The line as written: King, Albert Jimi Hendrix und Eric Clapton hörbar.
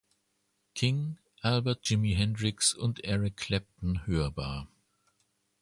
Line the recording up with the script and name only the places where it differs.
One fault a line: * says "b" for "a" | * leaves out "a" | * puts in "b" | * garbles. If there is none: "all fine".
all fine